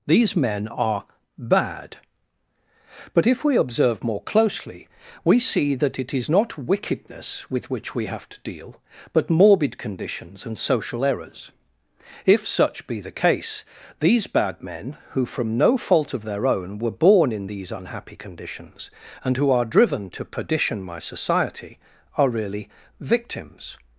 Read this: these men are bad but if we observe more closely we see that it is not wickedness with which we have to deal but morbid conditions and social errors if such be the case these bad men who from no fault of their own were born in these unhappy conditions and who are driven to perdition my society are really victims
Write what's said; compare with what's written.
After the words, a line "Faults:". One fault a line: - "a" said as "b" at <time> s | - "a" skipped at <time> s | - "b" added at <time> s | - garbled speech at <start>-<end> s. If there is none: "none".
these men are bad but if we observe more closely we see that it is not wickedness with which we have to deal but morbid conditions and social errors if such be the case these bad men who from no fault of their own were born in these unhappy conditions and who are driven to perdition my society are really victims
Faults:
none